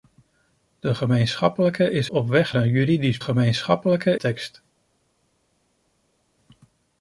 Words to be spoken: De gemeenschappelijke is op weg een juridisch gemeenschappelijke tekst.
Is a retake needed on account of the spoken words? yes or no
no